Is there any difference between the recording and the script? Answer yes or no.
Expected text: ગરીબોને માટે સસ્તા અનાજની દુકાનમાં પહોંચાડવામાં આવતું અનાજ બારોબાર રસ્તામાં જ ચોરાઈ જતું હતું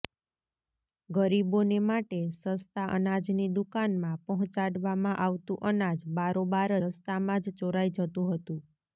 no